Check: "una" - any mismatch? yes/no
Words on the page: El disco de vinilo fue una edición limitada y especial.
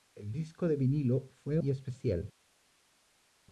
yes